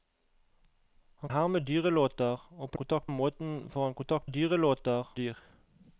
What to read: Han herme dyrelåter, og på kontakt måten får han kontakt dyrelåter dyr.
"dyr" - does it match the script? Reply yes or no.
yes